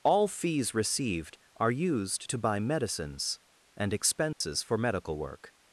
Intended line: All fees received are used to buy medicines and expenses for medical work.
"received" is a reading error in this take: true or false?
false